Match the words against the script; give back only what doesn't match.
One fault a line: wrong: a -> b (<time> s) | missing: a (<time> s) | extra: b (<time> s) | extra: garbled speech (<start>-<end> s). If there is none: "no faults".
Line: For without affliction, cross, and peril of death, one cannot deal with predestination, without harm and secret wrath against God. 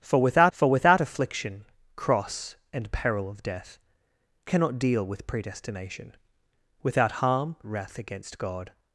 extra: for without (0.5 s)
missing: one (3.8 s)
missing: and secret (7.6 s)